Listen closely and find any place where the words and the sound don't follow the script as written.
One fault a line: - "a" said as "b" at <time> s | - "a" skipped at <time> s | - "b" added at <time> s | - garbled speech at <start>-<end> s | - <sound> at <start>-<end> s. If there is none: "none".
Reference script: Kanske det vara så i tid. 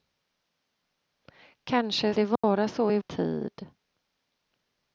- dropout at 2.4-2.4 s